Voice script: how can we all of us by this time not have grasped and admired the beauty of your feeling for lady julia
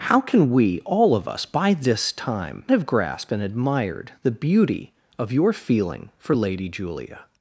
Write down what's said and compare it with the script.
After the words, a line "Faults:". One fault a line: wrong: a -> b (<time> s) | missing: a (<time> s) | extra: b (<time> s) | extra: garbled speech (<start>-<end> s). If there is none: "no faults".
how can we all of us by this time have grasped and admired the beauty of your feeling for lady julia
Faults:
missing: not (2.6 s)